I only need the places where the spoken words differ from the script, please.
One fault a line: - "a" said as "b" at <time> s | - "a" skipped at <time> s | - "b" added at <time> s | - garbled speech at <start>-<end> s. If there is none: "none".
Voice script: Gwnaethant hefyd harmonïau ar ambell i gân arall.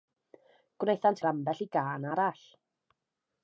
- "hefyd harmonïau" skipped at 1.2 s